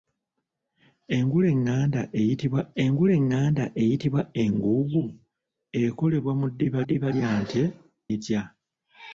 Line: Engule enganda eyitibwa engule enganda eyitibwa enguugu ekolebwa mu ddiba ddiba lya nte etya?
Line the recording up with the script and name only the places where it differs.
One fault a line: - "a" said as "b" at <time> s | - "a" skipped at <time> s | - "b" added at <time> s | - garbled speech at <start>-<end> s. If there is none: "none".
none